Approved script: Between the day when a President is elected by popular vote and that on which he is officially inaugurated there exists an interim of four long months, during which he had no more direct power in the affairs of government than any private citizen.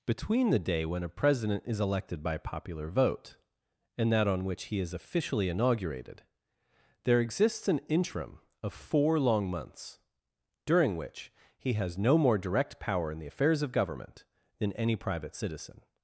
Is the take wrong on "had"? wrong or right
wrong